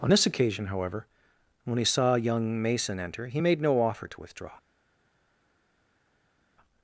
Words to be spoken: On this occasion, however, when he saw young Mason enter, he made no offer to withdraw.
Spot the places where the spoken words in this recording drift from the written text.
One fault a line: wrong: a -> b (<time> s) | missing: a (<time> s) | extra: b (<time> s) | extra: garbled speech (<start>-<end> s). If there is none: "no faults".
no faults